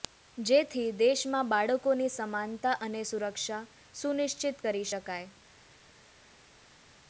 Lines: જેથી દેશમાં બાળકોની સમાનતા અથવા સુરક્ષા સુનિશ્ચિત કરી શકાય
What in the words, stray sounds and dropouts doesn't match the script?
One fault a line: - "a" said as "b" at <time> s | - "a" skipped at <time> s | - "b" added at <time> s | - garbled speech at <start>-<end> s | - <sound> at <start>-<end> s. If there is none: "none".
- "અથવા" said as "અને" at 2.8 s